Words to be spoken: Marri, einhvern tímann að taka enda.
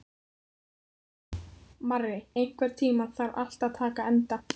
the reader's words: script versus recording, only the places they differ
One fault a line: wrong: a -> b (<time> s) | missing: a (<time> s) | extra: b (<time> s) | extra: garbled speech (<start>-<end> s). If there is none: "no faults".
extra: þarf allt (3.2 s)